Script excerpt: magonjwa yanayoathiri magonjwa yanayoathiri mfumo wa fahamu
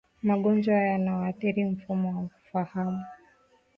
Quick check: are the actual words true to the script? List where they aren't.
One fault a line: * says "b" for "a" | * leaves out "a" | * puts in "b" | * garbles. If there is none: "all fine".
* leaves out "magonjwa yanayoathiri"